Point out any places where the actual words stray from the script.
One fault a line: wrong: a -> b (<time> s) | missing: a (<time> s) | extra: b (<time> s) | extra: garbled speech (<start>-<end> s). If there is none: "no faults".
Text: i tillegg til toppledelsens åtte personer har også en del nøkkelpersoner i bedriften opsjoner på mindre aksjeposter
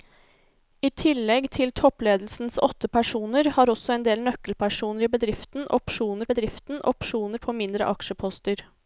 extra: bedriften opsjoner (6.3 s)